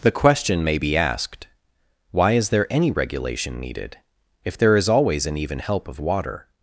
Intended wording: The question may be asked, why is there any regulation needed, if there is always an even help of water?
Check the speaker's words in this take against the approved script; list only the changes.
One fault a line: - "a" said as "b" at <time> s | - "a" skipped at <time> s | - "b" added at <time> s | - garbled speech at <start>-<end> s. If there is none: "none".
none